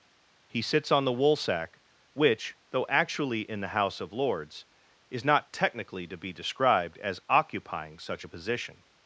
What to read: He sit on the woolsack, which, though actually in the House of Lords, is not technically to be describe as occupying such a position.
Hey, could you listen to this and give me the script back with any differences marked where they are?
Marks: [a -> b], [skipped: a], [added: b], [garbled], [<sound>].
He [sit -> sits] on the woolsack, which, though actually in the House of Lords, is not technically to be [describe -> described] as occupying such a position.